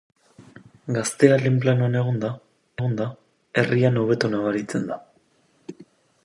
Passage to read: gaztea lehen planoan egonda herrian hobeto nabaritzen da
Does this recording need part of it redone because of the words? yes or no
yes